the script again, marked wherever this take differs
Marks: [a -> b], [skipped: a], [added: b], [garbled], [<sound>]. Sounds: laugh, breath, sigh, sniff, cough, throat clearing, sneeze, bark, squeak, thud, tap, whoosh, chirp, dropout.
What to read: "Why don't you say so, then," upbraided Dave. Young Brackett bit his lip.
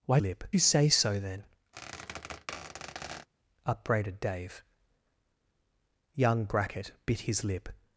"Why [don't -> lip] you say so, then," [squeak] upbraided Dave. Young Brackett bit his lip.